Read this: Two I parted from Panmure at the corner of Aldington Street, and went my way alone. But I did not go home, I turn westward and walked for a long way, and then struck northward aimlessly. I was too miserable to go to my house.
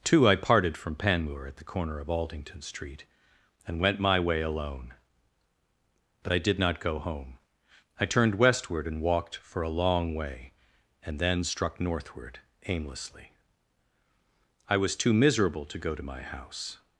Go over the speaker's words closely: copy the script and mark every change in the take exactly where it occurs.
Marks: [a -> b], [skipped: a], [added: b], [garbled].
Two I parted from Panmure at the corner of Aldington Street, and went my way alone. But I did not go home, I [turn -> turned] westward and walked for a long way, and then struck northward aimlessly. I was too miserable to go to my house.